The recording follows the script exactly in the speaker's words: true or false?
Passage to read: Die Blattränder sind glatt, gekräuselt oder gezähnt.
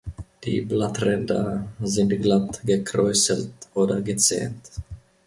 true